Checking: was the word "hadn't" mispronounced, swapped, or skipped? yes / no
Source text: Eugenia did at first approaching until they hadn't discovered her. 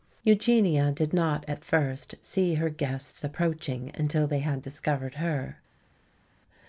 yes